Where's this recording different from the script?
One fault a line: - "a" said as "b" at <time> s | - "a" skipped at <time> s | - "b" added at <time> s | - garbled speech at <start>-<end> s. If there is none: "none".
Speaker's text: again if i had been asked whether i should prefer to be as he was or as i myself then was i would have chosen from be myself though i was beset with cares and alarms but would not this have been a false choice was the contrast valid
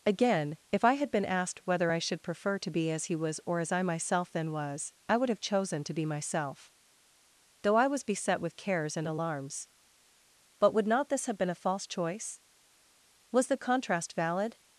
- "from" said as "to" at 5.8 s